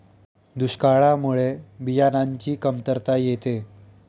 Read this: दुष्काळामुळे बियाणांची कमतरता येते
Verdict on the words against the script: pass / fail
pass